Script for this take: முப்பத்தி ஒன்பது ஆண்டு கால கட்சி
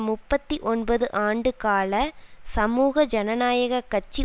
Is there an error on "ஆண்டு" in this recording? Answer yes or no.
no